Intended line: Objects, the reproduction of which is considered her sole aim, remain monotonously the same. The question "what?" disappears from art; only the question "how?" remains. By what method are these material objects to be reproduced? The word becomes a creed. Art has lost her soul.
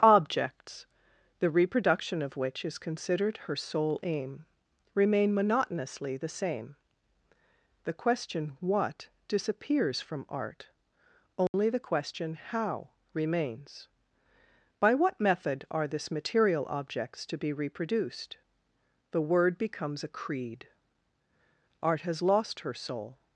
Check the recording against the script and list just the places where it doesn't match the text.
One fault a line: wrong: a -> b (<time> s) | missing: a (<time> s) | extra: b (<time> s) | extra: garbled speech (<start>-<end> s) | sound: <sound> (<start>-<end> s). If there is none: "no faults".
sound: dropout (11.5-11.5 s)
wrong: these -> this (15.9 s)